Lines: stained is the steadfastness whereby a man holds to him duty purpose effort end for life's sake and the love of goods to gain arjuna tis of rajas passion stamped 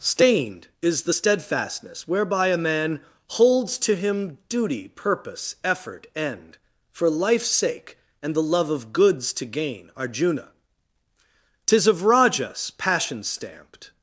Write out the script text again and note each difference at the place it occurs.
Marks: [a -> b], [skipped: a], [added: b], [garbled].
stained is the steadfastness whereby a man holds to him duty purpose effort end for life's sake and the love of goods to gain arjuna tis of rajas passion stamped